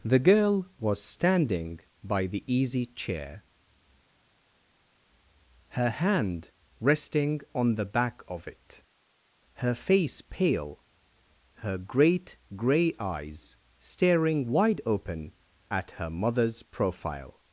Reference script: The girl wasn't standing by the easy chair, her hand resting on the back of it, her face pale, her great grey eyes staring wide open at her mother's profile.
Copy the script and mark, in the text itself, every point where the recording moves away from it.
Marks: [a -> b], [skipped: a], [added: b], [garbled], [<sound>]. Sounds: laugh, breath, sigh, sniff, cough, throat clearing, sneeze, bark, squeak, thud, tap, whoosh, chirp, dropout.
The girl [wasn't -> was] standing by the easy chair, her hand resting on the back of it, her face pale, her great grey eyes staring wide open at her mother's profile.